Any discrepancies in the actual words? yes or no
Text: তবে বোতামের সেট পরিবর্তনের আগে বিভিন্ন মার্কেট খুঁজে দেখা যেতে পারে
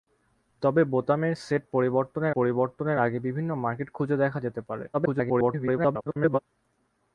yes